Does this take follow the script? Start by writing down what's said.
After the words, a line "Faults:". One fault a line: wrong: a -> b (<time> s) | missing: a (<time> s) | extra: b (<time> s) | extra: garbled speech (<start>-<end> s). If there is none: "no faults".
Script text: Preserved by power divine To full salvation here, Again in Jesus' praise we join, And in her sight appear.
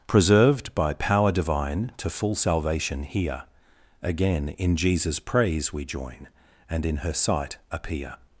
Preserved by power divine To full salvation here, Again in Jesus' praise we join, And in her sight appear.
Faults:
no faults